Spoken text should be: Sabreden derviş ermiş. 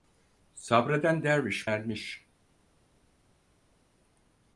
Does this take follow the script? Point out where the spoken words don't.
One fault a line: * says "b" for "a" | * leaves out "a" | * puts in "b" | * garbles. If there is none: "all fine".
all fine